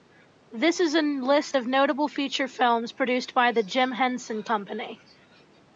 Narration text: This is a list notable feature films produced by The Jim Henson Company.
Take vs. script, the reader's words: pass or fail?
fail